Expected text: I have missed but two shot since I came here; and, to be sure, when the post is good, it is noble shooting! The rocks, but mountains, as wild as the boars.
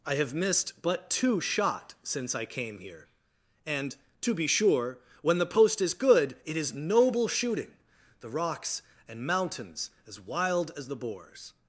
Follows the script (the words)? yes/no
no